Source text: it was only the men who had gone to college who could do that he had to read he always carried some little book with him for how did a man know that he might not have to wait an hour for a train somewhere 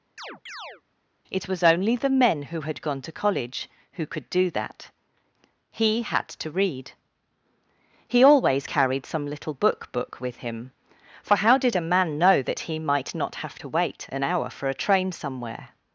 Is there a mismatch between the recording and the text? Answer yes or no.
yes